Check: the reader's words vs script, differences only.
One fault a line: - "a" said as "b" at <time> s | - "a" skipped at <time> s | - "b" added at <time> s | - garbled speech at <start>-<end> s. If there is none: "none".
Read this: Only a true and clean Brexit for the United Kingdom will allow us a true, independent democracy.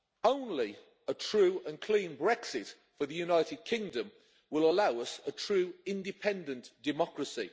none